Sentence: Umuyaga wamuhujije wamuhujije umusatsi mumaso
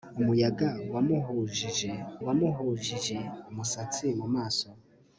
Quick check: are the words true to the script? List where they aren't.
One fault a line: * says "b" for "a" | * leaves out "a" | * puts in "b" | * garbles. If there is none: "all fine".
all fine